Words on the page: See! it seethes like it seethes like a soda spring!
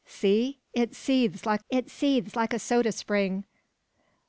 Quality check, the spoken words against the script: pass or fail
pass